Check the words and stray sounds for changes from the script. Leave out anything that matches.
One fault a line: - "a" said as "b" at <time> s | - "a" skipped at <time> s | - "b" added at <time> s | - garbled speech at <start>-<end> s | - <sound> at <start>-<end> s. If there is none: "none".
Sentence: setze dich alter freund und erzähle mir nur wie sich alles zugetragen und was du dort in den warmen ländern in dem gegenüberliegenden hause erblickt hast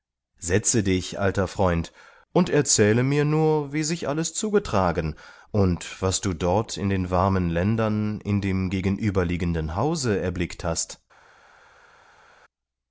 none